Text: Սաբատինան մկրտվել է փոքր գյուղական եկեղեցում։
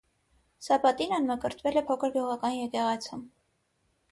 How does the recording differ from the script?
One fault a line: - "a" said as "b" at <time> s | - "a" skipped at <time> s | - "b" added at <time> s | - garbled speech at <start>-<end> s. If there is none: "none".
none